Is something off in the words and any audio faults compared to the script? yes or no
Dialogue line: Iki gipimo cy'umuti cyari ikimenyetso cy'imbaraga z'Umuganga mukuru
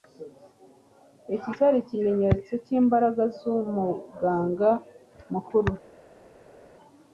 yes